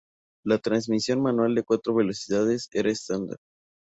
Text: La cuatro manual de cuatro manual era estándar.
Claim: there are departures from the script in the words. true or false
true